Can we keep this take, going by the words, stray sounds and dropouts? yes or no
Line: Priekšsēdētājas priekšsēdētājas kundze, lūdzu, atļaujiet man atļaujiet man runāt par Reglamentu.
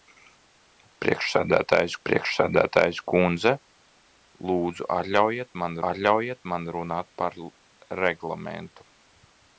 yes